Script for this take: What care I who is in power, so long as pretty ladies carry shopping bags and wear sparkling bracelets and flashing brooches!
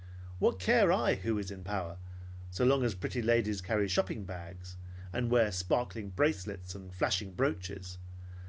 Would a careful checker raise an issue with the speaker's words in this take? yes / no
no